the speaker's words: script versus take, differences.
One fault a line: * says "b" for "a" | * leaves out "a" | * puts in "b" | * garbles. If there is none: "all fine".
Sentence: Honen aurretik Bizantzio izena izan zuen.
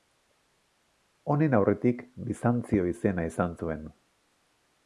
all fine